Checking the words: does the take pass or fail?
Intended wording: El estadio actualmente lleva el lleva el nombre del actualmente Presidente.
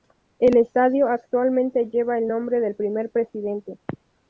fail